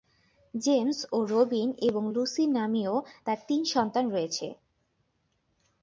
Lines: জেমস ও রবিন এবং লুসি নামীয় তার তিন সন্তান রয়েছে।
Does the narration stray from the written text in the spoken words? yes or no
no